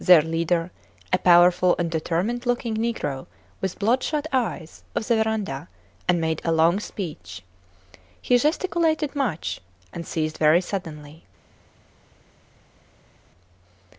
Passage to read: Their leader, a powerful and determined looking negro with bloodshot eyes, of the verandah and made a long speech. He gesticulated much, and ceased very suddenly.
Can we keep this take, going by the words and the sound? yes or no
yes